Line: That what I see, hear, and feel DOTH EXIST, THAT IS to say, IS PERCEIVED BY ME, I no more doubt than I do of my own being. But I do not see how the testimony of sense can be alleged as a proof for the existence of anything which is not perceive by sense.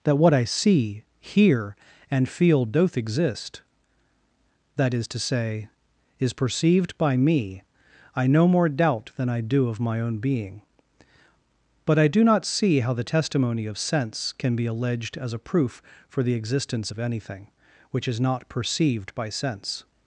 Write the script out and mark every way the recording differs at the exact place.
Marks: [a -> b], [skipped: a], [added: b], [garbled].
That what I see, hear, and feel DOTH EXIST, THAT IS to say, IS PERCEIVED BY ME, I no more doubt than I do of my own being. But I do not see how the testimony of sense can be alleged as a proof for the existence of anything which is not [perceive -> perceived] by sense.